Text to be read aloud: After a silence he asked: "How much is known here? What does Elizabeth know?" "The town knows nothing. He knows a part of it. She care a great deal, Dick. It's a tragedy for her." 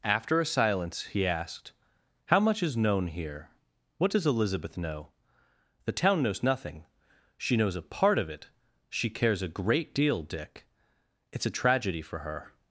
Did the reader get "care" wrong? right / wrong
wrong